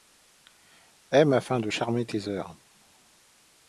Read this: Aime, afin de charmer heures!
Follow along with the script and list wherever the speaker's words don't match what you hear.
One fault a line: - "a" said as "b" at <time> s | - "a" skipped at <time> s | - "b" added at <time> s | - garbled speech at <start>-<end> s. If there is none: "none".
- "tes" added at 2.0 s